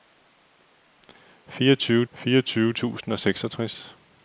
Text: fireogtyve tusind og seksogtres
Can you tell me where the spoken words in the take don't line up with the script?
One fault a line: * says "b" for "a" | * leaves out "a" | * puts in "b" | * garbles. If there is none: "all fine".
* puts in "fireogtyve"